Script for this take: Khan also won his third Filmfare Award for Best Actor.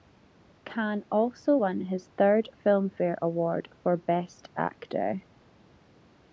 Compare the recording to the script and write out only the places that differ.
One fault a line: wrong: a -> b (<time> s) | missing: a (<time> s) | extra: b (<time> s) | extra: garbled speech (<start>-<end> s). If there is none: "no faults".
no faults